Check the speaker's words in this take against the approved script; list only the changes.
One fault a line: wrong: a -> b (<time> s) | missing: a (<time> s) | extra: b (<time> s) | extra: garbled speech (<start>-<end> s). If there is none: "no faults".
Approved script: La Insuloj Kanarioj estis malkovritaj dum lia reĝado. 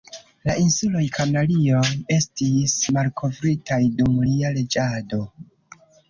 no faults